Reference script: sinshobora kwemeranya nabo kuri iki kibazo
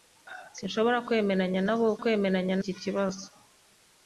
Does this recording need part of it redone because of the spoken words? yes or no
yes